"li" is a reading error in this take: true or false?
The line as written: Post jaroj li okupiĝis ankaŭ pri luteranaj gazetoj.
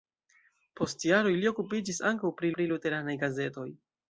false